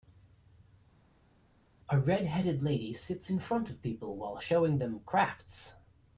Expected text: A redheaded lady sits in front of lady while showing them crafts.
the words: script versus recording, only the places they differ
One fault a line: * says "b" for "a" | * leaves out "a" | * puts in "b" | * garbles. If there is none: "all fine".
* says "people" for "lady"